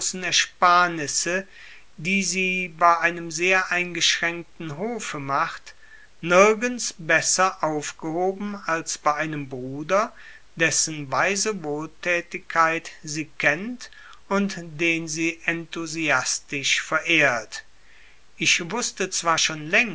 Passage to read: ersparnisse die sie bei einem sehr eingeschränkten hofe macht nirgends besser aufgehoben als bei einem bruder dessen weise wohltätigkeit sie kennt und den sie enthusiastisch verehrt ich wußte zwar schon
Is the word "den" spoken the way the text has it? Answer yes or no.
yes